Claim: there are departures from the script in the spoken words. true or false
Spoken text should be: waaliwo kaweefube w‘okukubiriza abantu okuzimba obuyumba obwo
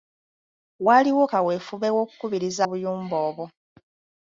true